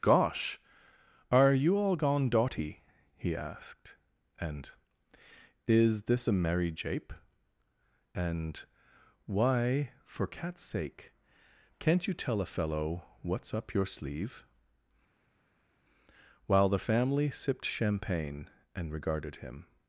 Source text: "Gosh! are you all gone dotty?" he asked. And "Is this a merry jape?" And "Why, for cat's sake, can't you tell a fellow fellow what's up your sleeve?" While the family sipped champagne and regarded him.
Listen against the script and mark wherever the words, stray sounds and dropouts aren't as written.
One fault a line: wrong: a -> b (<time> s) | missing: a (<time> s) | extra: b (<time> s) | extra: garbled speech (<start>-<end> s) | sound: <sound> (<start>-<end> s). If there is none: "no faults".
missing: fellow (13.0 s)